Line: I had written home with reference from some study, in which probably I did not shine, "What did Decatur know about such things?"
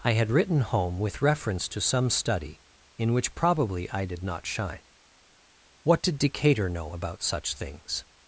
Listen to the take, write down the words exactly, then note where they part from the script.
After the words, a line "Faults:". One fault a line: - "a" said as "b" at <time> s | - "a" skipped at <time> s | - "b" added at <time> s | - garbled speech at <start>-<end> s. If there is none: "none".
I had written home with reference to some study, in which probably I did not shine, "What did Decatur know about such things?"
Faults:
- "from" said as "to" at 1.7 s